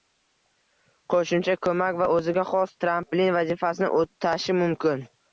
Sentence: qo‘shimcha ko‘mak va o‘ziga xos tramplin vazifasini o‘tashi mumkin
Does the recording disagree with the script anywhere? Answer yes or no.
no